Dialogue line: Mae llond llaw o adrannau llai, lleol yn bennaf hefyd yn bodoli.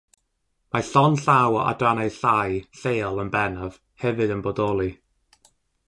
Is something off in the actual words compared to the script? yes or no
no